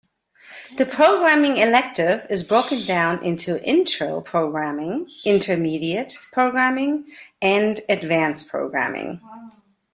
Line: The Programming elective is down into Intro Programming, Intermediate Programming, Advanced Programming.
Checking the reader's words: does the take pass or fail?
fail